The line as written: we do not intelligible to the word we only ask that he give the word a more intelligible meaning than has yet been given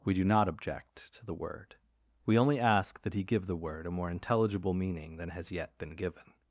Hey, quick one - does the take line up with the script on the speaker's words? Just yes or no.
no